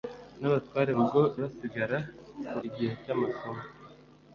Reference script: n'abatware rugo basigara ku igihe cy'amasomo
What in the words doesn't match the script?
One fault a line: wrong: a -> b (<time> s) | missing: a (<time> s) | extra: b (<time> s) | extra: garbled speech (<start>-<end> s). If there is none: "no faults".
no faults